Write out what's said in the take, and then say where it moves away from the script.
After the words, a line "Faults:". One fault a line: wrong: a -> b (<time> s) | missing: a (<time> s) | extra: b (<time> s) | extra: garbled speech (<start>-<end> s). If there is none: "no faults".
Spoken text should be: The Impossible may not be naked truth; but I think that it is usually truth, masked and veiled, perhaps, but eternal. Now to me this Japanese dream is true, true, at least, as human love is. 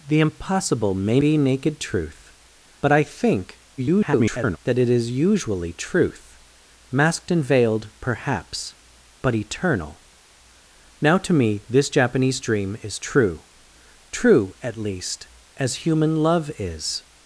The Impossible may be naked truth; but I think [garbled] that it is usually truth, masked and veiled, perhaps, but eternal. Now to me this Japanese dream is true, true, at least, as human love is.
Faults:
missing: not (1.2 s)
extra: garbled speech (3.8-4.6 s)